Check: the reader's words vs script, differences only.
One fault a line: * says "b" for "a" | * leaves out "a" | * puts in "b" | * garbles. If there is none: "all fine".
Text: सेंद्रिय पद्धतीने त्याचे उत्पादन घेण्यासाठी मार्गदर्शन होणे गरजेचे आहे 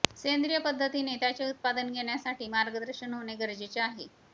all fine